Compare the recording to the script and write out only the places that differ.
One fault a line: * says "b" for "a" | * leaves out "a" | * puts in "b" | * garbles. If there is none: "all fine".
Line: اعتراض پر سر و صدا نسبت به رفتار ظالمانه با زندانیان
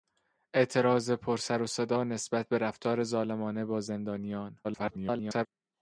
* garbles